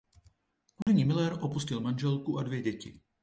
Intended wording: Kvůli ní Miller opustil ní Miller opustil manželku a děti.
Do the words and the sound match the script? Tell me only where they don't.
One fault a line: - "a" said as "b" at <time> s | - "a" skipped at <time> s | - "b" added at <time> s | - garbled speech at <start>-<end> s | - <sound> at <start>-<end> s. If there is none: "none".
- dropout at 0.8-0.9 s
- "ní Miller opustil" skipped at 1.8 s
- "dvě" added at 2.4 s